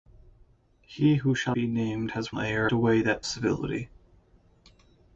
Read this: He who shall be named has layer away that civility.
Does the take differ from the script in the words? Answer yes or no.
no